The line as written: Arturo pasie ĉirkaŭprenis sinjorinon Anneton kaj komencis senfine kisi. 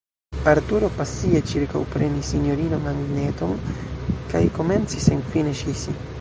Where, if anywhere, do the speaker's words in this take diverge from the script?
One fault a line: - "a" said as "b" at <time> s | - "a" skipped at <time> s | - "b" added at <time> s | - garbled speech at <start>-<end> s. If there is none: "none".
none